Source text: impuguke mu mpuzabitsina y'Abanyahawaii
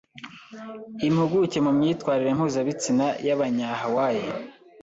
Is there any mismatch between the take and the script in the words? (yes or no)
yes